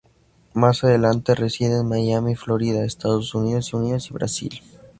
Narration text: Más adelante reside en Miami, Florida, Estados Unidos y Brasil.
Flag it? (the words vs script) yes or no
yes